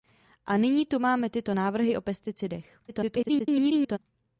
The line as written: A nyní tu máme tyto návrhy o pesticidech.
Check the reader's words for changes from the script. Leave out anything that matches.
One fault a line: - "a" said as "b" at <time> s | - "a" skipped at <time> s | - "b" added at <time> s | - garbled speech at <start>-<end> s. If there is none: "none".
- garbled speech at 2.9-4.0 s